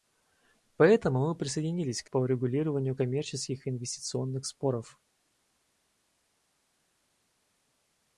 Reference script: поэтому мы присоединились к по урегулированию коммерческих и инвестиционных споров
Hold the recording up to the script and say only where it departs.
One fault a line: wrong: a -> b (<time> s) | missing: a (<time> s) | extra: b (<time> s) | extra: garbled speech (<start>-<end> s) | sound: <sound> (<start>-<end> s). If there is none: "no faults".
no faults